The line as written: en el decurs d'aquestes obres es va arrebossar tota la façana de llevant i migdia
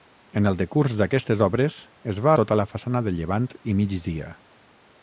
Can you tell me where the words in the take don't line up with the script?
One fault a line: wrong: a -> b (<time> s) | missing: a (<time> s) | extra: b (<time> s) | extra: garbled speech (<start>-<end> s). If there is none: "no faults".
missing: arrebossar (2.3 s)